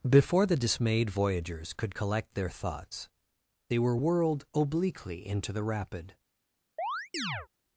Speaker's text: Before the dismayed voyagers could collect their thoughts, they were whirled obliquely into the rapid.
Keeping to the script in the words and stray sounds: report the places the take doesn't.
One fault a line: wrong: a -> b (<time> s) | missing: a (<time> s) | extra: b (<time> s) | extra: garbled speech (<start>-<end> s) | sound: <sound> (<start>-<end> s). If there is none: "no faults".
sound: chirp (6.8-7.5 s)